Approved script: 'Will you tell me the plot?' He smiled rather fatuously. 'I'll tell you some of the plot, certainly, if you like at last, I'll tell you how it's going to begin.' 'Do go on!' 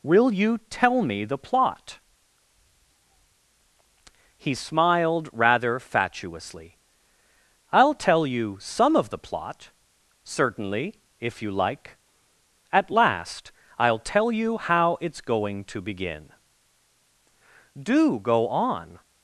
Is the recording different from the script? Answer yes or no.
no